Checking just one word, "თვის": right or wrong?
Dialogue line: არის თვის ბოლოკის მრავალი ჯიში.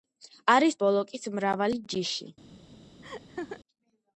wrong